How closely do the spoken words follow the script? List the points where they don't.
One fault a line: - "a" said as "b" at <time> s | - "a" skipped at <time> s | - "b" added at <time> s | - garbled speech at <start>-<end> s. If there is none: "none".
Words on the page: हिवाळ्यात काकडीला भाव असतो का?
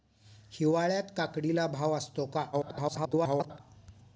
- garbled speech at 2.5-3.6 s